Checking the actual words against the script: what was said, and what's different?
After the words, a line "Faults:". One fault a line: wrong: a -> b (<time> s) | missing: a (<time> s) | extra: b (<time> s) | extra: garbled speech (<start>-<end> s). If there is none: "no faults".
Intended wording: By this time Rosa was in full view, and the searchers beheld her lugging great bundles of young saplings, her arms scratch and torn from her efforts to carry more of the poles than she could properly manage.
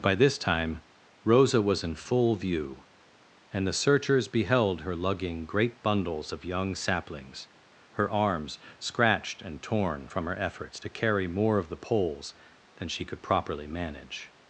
By this time Rosa was in full view, and the searchers beheld her lugging great bundles of young saplings, her arms scratched and torn from her efforts to carry more of the poles than she could properly manage.
Faults:
wrong: scratch -> scratched (8.8 s)